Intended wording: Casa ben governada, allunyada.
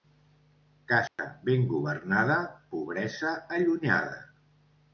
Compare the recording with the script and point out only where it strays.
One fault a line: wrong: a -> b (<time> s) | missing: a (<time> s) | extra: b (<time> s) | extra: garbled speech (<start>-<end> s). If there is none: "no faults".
extra: pobresa (2.7 s)